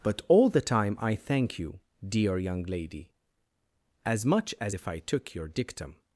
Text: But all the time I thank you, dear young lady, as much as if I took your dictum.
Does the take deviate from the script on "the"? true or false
false